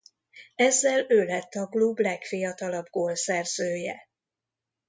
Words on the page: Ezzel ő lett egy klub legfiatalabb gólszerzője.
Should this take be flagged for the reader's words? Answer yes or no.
yes